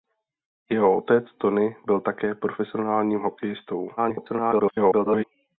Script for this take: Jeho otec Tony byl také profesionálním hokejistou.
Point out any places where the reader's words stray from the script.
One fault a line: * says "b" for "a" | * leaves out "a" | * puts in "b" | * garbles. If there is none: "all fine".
* garbles